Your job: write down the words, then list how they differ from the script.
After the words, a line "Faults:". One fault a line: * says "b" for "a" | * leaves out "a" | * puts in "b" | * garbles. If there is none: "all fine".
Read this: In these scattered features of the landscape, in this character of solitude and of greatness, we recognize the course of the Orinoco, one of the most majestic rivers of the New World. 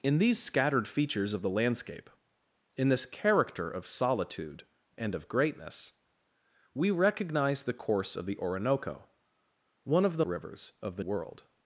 In these scattered features of the landscape, in this character of solitude and of greatness, we recognize the course of the Orinoco, one of the rivers of the World.
Faults:
* leaves out "most majestic"
* leaves out "New"